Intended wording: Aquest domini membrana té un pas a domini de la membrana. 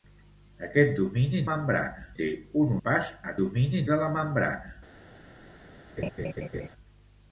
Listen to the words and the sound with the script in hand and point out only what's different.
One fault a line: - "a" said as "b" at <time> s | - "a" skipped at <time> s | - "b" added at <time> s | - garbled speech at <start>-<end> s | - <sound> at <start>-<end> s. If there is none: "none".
- laugh at 6.0-6.7 s